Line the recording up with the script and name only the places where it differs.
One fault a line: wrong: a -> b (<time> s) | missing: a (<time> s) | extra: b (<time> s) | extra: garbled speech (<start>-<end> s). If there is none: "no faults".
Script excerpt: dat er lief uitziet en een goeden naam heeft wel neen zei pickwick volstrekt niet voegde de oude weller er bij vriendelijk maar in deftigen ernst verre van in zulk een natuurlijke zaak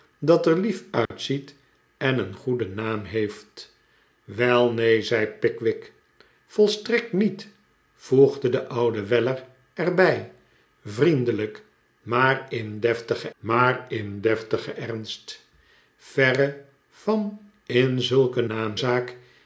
extra: maar in deftigen (13.4 s)
wrong: natuurlijke -> naam (18.4 s)